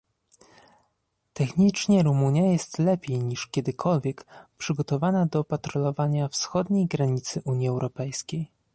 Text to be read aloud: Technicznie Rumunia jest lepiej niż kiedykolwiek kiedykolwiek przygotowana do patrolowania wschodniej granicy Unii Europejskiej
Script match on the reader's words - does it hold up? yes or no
no